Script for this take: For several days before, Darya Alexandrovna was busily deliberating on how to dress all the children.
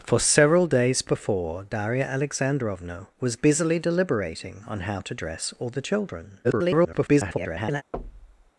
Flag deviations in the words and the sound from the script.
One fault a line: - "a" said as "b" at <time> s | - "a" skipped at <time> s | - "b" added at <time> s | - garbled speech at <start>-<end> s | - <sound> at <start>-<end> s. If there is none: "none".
- garbled speech at 6.4-7.8 s
- thud at 7.9-8.5 s